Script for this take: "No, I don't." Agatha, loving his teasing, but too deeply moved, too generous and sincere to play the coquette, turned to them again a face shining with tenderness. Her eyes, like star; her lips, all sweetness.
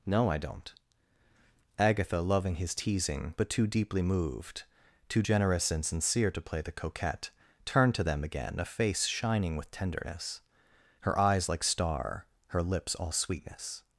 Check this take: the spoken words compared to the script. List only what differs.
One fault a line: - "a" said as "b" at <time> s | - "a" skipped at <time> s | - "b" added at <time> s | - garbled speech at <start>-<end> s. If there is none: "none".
none